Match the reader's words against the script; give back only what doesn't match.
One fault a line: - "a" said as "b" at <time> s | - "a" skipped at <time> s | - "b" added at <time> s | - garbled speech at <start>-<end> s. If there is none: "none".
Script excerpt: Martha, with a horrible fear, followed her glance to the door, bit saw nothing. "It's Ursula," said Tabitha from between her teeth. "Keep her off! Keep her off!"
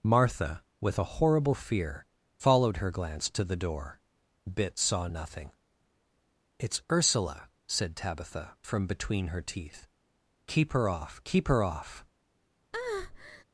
none